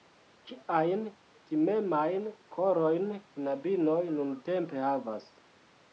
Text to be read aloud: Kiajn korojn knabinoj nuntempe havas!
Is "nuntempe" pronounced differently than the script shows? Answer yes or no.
no